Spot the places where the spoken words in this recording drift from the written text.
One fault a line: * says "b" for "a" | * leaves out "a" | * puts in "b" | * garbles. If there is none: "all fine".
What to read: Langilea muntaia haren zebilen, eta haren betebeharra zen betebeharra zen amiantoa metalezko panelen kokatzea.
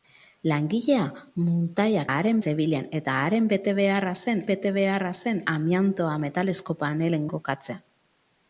all fine